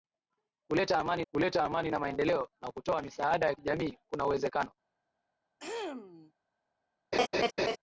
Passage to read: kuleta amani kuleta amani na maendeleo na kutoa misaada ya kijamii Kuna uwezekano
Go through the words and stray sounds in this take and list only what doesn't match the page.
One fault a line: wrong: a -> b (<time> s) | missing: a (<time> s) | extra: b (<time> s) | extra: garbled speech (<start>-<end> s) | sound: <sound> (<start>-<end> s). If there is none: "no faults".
sound: throat clearing (5.6-6.3 s)
sound: laugh (7.1-7.8 s)